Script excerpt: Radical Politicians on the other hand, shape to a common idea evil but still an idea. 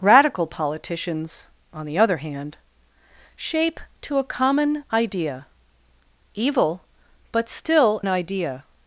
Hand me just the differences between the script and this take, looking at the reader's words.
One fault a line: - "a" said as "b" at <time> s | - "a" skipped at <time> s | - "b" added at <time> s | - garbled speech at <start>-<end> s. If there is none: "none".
- "an" skipped at 8.0 s